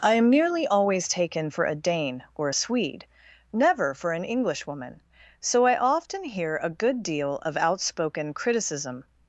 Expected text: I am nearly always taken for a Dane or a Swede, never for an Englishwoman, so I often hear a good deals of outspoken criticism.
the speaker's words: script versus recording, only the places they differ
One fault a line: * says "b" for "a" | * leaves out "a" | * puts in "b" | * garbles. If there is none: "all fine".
* says "deal" for "deals"